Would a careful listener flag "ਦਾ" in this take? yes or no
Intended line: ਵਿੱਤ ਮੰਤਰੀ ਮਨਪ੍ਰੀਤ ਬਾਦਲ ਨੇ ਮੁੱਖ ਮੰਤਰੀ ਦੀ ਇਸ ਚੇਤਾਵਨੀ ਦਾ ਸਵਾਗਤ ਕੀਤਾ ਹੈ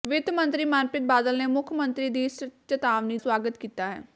yes